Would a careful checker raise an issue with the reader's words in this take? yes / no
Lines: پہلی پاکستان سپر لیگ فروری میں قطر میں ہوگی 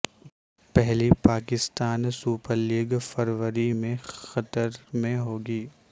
no